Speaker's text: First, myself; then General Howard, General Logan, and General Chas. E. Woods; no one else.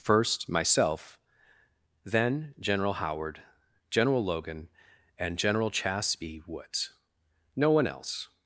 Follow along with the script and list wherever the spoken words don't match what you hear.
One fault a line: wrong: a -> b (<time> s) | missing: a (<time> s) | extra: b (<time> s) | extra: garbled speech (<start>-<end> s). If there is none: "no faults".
wrong: E -> B (6.2 s)